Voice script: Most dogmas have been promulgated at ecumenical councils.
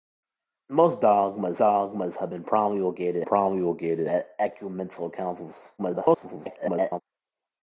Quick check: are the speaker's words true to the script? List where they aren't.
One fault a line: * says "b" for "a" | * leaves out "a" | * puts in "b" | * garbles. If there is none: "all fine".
* puts in "dogmas"
* puts in "promulgated"
* garbles